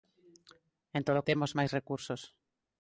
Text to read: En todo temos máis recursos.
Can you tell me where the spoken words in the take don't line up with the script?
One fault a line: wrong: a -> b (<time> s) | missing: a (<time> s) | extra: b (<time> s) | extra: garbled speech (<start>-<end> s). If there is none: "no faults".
no faults